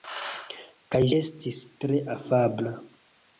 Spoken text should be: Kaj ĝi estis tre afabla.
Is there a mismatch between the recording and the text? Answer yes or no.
yes